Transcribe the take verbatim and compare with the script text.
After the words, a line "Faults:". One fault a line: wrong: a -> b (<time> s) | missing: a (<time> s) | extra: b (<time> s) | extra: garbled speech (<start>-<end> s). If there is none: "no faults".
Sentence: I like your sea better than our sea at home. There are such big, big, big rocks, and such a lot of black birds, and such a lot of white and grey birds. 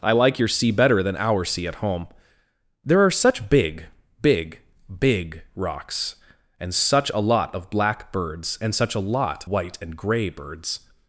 I like your sea better than our sea at home. There are such big, big, big rocks, and such a lot of black birds, and such a lot white and grey birds.
Faults:
missing: of (9.4 s)